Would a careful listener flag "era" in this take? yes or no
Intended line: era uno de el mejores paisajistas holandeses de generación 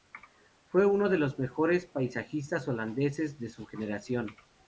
yes